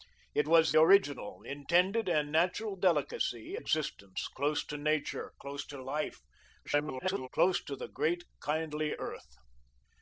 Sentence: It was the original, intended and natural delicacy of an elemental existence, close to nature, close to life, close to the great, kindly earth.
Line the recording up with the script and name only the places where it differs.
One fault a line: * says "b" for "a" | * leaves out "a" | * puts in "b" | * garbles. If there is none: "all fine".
* leaves out "the"
* leaves out "of an elemental"
* garbles